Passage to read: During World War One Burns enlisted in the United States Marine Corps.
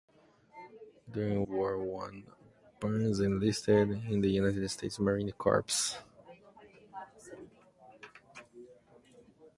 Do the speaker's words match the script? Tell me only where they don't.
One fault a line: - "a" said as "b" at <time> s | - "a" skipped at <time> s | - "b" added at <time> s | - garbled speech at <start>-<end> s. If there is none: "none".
- "World" skipped at 1.4 s